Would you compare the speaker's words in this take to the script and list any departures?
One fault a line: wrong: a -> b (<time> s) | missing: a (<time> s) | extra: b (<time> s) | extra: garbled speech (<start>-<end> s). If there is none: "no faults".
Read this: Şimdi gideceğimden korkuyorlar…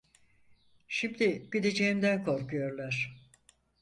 no faults